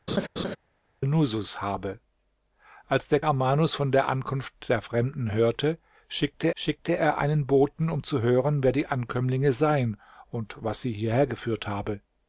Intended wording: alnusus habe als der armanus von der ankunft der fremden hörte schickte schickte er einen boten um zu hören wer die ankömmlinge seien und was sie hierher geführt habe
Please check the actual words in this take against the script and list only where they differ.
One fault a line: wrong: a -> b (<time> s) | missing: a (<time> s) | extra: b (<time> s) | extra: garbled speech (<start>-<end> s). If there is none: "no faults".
no faults